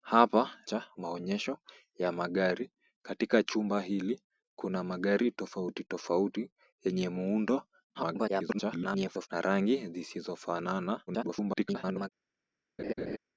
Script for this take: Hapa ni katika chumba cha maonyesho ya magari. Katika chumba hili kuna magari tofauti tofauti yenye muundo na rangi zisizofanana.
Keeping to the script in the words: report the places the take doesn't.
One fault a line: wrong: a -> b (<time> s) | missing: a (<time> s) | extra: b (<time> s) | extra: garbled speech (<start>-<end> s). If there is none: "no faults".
missing: ni katika chumba (0.5 s)
extra: garbled speech (7.9-9.3 s)
extra: garbled speech (11.1-12.1 s)